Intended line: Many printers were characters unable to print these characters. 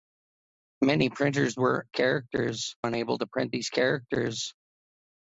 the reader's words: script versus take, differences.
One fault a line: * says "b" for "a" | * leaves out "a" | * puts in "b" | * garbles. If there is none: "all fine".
all fine